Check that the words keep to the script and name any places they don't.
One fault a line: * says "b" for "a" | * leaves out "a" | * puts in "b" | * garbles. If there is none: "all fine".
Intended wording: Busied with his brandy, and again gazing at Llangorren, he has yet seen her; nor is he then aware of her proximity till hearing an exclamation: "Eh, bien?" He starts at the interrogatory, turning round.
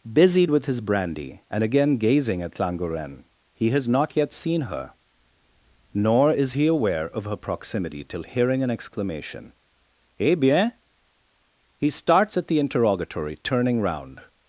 * puts in "not"
* leaves out "then"